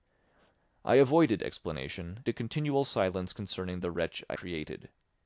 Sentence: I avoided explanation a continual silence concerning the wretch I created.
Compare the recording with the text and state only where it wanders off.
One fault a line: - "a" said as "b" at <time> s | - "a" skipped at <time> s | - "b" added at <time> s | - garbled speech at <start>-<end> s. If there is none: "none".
none